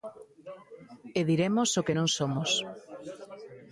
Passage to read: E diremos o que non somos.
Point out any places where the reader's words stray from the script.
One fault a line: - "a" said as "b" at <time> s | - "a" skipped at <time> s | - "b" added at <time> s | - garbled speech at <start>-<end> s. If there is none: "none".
none